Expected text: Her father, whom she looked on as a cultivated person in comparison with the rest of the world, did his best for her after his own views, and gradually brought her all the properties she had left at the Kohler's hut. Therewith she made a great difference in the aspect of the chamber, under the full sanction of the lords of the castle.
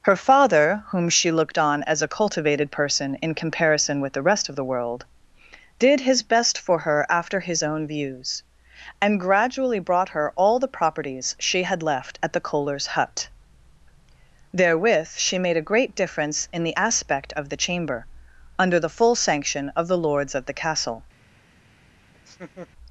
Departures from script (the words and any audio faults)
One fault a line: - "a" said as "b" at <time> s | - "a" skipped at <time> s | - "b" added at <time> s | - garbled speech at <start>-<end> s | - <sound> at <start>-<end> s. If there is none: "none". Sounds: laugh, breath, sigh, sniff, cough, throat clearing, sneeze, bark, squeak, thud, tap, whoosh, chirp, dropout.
- laugh at 22.1-22.7 s